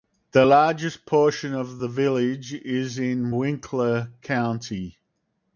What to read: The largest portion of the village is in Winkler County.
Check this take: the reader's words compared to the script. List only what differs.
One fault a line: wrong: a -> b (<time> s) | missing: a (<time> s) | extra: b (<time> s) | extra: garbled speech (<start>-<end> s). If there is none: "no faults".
no faults